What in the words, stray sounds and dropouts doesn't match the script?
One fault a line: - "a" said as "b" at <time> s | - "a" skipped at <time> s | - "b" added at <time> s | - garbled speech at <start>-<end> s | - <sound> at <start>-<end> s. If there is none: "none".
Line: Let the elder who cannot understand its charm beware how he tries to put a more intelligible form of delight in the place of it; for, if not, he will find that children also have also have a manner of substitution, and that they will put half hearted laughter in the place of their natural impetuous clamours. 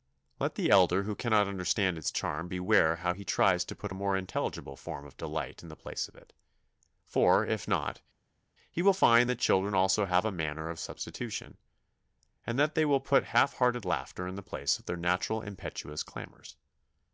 - "also have" skipped at 10.2 s